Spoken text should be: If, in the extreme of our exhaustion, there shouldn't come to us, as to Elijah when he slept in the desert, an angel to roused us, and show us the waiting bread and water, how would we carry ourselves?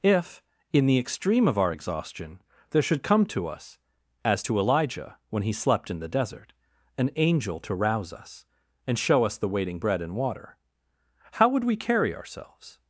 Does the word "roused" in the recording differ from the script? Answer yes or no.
yes